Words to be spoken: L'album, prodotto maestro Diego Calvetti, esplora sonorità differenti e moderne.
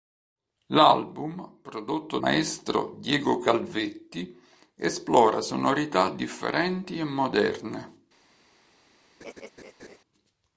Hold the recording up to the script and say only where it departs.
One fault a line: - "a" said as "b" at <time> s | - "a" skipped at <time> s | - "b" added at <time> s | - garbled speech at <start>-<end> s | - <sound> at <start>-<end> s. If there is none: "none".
- laugh at 9.2-10.0 s